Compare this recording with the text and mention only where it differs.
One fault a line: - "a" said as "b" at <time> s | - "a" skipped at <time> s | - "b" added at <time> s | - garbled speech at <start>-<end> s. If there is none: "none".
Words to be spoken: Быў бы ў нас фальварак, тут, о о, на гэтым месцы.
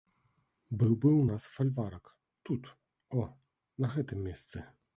- "о" skipped at 3.3 s